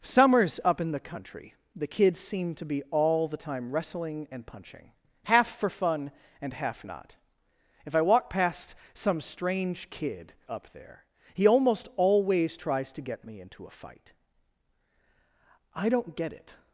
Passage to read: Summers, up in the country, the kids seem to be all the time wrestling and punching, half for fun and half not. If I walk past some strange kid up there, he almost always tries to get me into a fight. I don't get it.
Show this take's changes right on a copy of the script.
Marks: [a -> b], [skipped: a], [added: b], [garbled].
Summers, up in the country, the kids seem to be all the time wrestling and punching, half for fun and half not. If I walk past some strange kid up there, he almost always tries to get me into a fight. I don't get it.